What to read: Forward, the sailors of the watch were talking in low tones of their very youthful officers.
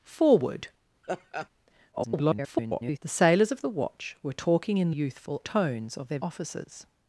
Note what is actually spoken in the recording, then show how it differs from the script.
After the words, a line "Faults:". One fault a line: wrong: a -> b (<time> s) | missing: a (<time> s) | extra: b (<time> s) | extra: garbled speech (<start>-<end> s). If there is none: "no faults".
Forward, [garbled] the sailors of the watch were talking in youthful tones of their officers.
Faults:
extra: garbled speech (1.9-3.0 s)
wrong: low -> youthful (4.9 s)
missing: very youthful (6.2 s)